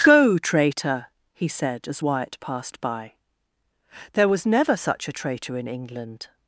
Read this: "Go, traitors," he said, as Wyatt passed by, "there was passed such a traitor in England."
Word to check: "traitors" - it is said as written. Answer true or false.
false